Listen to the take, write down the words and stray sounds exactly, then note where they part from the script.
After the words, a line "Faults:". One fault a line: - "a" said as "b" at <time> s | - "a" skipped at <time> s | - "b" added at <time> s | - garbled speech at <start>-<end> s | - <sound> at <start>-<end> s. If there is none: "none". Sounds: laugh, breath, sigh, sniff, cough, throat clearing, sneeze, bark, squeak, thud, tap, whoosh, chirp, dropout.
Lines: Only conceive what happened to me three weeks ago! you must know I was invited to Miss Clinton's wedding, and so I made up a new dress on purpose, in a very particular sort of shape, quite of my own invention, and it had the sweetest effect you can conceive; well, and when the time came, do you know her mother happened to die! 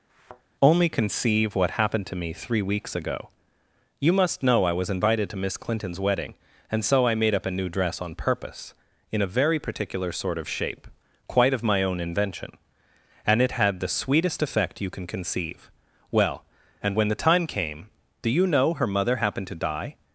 Only conceive what happened to me three weeks ago! you must know I was invited to Miss Clinton's wedding, and so I made up a new dress on purpose, in a very particular sort of shape, quite of my own invention, and it had the sweetest effect you can conceive; well, and when the time came, do you know her mother happened to die!
Faults:
- thud at 0.1-0.4 s